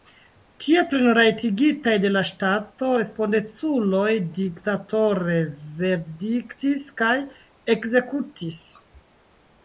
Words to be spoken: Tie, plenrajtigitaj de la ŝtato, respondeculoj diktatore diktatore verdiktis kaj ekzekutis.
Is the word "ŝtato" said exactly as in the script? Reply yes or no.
yes